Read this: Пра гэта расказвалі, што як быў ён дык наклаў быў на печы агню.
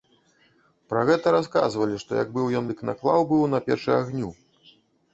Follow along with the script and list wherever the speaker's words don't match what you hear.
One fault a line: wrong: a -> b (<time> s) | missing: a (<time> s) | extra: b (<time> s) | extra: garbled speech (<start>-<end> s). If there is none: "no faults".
no faults